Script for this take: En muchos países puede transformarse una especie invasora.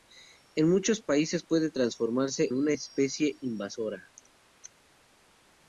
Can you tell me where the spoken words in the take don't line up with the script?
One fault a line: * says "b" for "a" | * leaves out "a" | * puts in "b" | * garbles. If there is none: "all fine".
all fine